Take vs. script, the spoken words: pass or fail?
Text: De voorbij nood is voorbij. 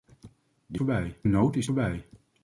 pass